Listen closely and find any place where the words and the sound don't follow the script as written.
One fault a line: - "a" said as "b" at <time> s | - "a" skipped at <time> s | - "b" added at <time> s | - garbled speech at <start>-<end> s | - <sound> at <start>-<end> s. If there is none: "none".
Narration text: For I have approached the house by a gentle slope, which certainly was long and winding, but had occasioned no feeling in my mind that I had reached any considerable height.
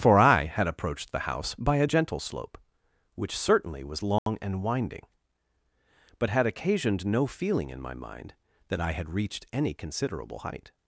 - "have" said as "had" at 0.5 s
- dropout at 4.2-4.3 s